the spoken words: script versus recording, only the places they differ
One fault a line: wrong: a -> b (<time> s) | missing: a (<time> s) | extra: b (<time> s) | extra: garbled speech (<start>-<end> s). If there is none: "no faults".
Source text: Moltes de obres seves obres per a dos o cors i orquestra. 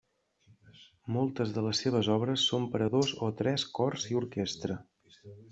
wrong: obres -> les (1.7 s)
extra: són (2.5 s)
extra: tres (3.4 s)